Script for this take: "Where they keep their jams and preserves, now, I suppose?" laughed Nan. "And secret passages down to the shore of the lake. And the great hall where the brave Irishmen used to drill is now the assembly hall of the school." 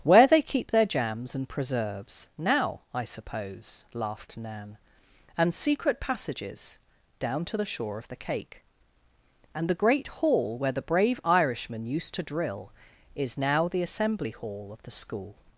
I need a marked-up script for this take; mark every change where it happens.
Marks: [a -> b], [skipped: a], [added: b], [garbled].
"Where they keep their jams and preserves, now, I suppose?" laughed Nan. "And secret passages down to the shore of the [lake. -> cake] And the great hall where the brave Irishmen used to drill is now the assembly hall of the school."